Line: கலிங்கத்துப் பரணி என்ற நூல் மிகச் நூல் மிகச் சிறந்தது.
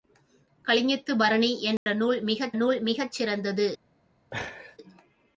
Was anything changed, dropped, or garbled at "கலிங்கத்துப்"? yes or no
no